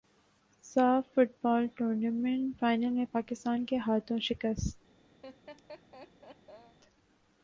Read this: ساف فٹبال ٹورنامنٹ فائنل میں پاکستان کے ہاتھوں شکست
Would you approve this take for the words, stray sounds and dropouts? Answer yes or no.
no